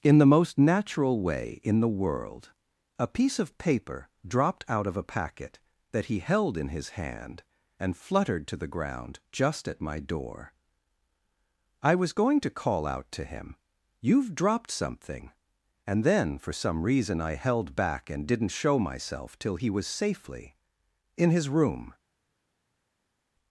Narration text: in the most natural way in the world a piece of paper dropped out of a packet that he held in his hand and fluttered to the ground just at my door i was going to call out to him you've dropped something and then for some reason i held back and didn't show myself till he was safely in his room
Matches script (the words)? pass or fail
pass